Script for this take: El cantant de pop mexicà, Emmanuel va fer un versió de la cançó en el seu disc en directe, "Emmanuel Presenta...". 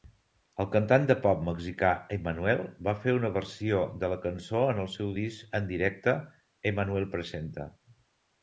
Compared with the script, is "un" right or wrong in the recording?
wrong